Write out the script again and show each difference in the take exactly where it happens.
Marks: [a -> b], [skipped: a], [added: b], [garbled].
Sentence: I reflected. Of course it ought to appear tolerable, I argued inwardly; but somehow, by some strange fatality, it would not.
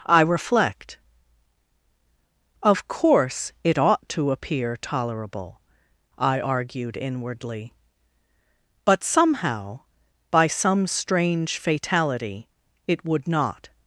I [reflected. -> reflect] Of course it ought to appear tolerable, I argued inwardly; but somehow, by some strange fatality, it would not.